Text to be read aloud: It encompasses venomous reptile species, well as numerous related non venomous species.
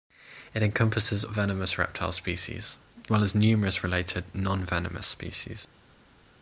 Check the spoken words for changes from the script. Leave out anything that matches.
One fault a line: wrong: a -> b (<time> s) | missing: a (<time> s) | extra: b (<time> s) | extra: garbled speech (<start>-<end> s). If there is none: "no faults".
no faults